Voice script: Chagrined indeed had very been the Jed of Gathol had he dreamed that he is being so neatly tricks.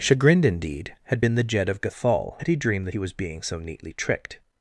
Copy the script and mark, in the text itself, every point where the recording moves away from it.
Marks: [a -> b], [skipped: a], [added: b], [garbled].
Chagrined indeed had [skipped: very] been the Jed of Gathol had he dreamed that he [is -> was] being so neatly [tricks. -> tricked]